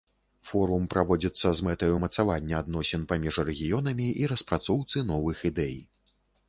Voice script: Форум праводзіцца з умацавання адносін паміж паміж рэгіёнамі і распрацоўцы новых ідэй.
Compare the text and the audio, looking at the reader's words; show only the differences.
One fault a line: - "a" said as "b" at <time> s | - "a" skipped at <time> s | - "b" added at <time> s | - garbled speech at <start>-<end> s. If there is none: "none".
- "мэтай" added at 1.7 s
- "паміж" skipped at 3.4 s